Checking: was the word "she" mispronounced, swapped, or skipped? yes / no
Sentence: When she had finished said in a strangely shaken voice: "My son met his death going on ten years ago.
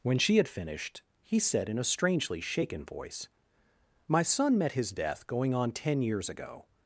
no